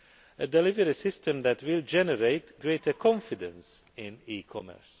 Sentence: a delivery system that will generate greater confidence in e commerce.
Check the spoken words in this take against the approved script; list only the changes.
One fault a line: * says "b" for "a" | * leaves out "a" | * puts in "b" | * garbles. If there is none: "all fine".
all fine